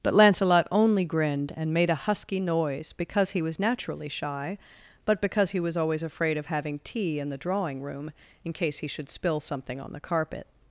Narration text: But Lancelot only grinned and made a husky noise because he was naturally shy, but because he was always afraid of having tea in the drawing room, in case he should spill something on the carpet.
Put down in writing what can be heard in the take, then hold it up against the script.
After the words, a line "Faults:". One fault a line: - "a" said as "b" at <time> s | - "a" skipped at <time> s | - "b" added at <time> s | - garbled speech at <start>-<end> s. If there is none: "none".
But Lancelot only grinned and made a husky noise because he was naturally shy, but because he was always afraid of having tea in the drawing room, in case he should spill something on the carpet.
Faults:
none